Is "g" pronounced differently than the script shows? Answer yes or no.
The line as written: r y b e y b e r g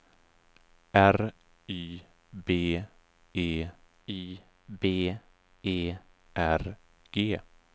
no